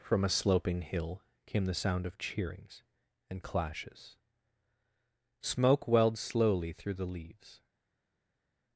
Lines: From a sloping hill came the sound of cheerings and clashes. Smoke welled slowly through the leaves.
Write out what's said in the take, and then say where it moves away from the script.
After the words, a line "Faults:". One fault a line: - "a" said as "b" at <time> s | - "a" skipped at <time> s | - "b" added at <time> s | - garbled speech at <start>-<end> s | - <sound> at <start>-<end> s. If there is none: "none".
From a sloping hill came the sound of cheerings and clashes. Smoke welled slowly through the leaves.
Faults:
none